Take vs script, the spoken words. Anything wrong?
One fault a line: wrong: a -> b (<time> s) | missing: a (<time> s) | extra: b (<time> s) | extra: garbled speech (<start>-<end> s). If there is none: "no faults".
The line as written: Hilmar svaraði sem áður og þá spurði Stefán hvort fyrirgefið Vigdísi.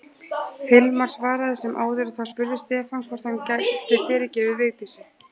extra: hann gæti (3.3 s)